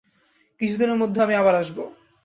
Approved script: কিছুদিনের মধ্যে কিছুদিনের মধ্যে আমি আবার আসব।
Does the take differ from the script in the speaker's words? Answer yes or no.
yes